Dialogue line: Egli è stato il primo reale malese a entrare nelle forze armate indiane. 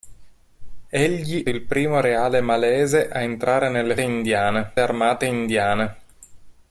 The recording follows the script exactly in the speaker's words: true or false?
false